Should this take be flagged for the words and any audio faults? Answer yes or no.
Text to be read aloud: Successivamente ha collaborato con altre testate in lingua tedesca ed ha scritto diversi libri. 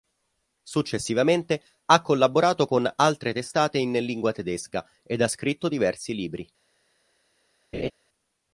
yes